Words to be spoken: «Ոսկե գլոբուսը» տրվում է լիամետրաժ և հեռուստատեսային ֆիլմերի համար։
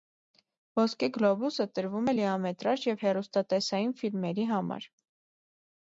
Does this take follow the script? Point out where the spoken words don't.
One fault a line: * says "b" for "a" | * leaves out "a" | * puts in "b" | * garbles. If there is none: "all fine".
all fine